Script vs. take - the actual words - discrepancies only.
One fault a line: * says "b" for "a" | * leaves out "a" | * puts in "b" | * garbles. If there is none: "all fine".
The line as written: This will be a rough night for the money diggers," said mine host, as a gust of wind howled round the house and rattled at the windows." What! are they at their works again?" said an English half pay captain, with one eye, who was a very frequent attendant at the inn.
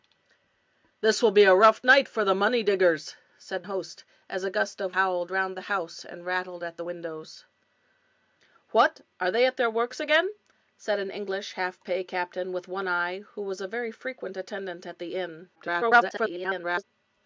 * leaves out "mine"
* leaves out "wind"
* garbles